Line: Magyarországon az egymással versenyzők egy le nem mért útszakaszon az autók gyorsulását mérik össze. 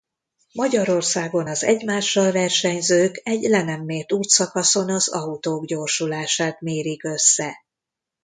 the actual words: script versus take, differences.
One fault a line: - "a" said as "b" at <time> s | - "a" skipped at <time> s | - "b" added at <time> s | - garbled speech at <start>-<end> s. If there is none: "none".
none